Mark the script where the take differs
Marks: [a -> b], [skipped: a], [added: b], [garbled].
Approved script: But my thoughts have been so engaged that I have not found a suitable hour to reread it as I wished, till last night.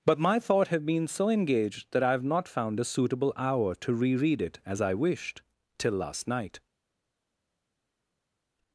But my [thoughts -> thought] have been so engaged that I have not found a suitable hour to reread it as I wished, till last night.